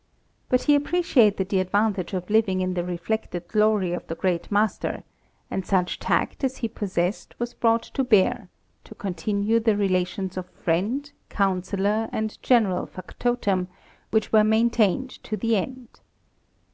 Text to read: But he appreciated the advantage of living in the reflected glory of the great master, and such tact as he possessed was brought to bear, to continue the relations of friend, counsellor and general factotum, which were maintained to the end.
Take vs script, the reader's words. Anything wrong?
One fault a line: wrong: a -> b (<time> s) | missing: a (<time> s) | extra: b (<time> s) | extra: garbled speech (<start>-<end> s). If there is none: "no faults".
no faults